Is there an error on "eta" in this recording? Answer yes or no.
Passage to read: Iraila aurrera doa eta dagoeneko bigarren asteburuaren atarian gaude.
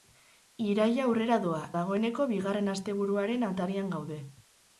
yes